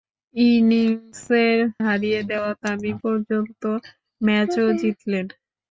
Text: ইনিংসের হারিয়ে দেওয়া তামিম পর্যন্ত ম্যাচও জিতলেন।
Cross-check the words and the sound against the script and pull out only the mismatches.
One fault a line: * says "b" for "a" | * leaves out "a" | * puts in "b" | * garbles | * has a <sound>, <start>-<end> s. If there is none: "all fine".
all fine